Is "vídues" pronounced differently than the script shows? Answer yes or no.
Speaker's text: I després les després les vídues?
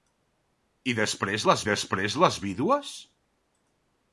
no